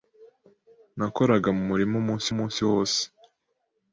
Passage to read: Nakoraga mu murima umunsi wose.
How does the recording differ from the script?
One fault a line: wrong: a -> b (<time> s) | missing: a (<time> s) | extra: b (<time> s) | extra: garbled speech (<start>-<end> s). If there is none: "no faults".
extra: umunsi (2.3 s)